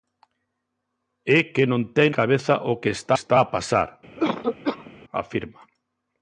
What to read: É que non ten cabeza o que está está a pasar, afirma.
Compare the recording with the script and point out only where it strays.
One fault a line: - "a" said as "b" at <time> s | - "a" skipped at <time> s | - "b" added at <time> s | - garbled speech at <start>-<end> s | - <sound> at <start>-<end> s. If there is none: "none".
- cough at 4.2-4.9 s